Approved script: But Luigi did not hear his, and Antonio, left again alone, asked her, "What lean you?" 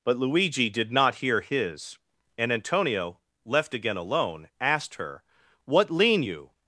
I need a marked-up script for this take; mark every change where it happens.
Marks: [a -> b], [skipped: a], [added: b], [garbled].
But Luigi did not hear his, and Antonio, left again alone, asked her, "What lean you?"